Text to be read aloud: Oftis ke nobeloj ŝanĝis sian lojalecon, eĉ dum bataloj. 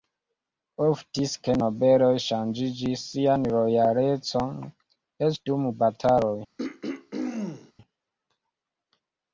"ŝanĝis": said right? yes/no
yes